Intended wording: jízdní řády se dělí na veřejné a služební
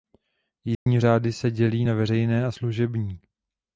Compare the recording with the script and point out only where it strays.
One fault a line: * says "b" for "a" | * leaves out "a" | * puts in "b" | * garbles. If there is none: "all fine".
all fine